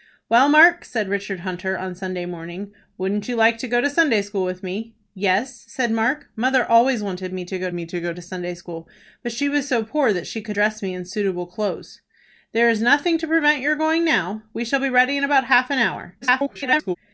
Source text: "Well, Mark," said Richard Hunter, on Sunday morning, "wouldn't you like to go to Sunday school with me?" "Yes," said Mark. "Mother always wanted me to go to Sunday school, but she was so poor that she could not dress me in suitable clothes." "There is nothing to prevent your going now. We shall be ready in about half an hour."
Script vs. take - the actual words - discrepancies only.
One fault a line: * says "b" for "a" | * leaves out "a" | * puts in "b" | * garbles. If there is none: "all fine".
* puts in "me"
* puts in "go to"
* leaves out "not"
* garbles